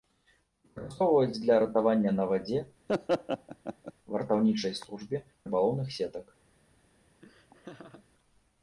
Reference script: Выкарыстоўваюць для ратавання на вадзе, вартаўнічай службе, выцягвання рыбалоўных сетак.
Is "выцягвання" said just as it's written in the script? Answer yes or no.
no